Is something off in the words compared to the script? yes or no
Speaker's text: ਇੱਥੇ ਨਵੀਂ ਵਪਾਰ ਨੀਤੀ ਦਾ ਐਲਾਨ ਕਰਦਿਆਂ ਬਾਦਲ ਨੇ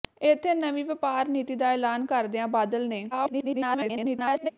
yes